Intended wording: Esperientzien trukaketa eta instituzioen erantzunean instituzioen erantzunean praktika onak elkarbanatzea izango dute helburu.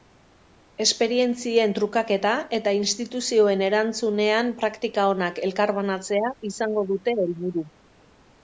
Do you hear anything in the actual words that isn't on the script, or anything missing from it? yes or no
yes